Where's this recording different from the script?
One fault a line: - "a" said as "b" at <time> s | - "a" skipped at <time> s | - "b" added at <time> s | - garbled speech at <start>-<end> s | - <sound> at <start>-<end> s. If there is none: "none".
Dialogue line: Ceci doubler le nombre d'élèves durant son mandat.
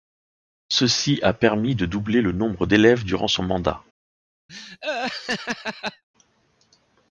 - "a permis de" added at 1.2 s
- laugh at 4.5-6.0 s